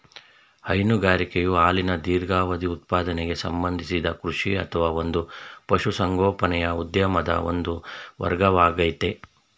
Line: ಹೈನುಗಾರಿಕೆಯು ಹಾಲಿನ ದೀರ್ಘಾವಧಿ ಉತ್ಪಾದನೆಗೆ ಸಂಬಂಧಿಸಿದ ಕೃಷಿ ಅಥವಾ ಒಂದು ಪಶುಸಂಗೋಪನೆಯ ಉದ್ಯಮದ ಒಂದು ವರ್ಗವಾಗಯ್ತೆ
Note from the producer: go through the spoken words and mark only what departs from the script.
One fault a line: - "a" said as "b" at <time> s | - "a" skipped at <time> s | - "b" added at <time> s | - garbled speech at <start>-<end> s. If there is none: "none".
none